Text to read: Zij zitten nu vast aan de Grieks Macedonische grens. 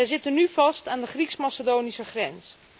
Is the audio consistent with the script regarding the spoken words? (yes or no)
yes